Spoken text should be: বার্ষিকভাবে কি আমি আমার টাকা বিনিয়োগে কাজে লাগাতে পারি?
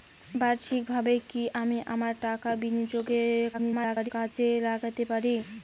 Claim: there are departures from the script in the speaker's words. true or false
true